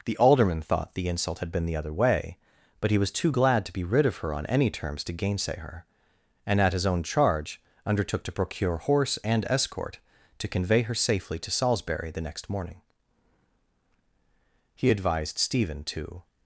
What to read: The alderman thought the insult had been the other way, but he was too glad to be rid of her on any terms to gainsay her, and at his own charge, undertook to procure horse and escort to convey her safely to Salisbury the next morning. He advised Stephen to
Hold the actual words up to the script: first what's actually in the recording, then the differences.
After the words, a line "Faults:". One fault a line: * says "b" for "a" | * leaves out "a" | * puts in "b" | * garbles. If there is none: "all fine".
The alderman thought the insult had been the other way, but he was too glad to be rid of her on any terms to gainsay her, and at his own charge, undertook to procure horse and escort to convey her safely to Salisbury the next morning. He advised Stephen to
Faults:
all fine